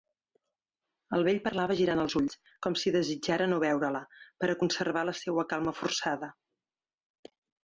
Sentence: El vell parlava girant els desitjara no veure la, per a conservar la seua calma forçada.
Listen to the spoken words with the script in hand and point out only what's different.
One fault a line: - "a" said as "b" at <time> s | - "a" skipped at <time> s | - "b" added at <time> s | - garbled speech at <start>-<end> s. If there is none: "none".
- "ulls com si" added at 2.2 s